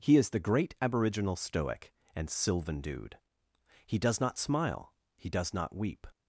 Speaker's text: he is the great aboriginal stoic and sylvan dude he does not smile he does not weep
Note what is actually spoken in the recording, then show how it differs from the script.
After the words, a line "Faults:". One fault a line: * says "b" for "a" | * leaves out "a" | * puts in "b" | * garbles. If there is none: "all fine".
he is the great aboriginal stoic and sylvan dude he does not smile he does not weep
Faults:
all fine